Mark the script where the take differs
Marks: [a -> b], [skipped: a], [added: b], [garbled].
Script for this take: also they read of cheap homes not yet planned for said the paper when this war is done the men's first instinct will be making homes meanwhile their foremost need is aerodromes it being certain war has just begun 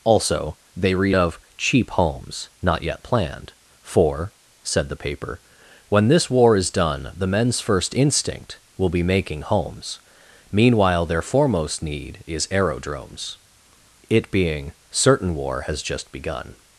also they read of cheap homes not yet planned for said the paper when this war is done the men's first instinct will be making homes meanwhile their foremost need is aerodromes it being certain war has just begun